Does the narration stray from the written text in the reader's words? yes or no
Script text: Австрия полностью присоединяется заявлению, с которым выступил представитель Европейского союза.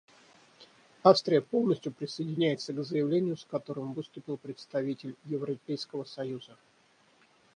yes